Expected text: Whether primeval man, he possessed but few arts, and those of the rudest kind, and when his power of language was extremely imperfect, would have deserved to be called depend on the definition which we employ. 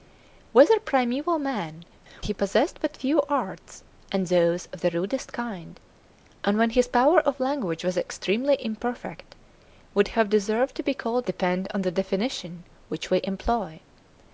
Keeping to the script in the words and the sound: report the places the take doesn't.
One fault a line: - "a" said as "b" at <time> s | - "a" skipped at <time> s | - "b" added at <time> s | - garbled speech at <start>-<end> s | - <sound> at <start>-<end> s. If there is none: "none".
none